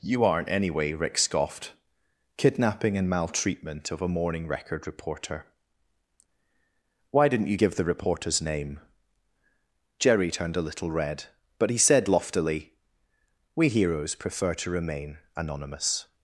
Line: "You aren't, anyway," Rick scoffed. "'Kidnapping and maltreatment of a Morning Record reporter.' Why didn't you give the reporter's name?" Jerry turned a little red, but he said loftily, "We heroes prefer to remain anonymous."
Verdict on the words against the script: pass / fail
pass